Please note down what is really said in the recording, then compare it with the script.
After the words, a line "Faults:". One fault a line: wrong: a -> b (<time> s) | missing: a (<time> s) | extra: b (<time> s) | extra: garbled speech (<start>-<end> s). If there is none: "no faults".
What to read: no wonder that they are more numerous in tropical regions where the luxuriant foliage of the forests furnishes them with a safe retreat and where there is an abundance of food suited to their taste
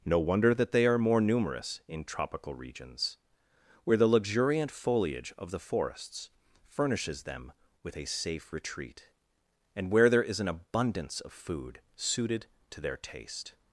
no wonder that they are more numerous in tropical regions where the luxuriant foliage of the forests furnishes them with a safe retreat and where there is an abundance of food suited to their taste
Faults:
no faults